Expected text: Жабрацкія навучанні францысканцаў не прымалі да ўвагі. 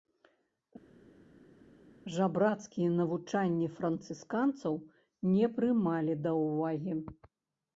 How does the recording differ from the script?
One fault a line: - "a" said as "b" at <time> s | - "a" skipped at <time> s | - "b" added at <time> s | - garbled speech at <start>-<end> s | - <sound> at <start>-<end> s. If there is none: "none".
none